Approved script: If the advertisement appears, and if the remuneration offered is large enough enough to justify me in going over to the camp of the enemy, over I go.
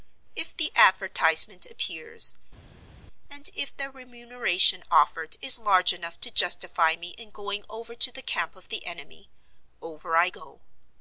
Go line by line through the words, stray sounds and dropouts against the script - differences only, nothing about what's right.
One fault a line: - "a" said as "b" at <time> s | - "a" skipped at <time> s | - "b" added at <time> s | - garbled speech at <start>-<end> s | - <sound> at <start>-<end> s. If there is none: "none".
- "enough" skipped at 6.2 s